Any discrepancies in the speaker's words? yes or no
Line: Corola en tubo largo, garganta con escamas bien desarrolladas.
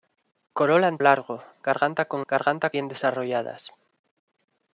yes